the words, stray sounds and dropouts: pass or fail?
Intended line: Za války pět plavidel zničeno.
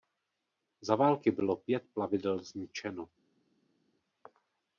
fail